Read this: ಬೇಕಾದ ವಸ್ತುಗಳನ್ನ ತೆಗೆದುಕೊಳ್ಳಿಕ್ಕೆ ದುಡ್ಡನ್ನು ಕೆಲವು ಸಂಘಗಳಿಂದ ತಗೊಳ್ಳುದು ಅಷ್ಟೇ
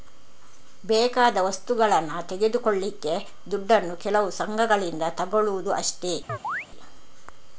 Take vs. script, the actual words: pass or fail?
pass